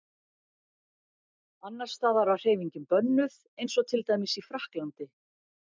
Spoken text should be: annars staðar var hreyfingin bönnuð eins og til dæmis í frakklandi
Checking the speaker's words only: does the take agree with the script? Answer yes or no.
yes